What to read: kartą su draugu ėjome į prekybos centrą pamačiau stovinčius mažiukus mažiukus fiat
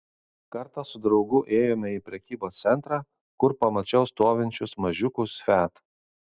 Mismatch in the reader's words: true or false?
true